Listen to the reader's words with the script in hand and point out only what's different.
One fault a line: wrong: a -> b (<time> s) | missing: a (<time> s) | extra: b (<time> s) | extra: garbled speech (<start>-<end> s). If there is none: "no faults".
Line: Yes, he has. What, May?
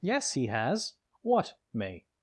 no faults